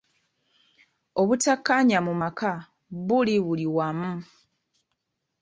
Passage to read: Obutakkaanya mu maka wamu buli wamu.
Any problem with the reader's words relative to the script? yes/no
yes